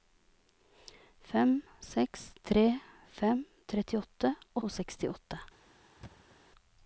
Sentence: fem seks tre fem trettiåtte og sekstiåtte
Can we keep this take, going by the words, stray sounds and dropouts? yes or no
no